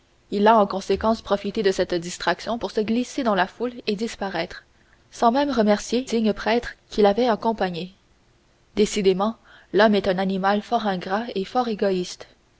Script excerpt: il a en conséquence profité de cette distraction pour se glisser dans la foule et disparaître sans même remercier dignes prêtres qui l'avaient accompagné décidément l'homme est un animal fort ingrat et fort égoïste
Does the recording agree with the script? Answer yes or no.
yes